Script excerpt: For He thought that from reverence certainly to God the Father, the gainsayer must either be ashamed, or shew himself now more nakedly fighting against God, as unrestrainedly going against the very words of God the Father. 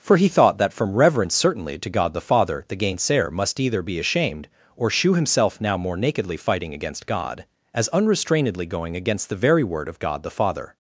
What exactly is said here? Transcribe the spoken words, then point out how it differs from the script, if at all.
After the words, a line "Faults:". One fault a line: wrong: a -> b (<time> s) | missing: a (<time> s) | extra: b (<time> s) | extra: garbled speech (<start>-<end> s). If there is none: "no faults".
For He thought that from reverence certainly to God the Father, the gainsayer must either be ashamed, or shew himself now more nakedly fighting against God, as unrestrainedly going against the very word of God the Father.
Faults:
wrong: words -> word (9.6 s)